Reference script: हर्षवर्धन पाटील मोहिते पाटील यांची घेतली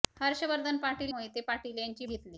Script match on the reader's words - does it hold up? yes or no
yes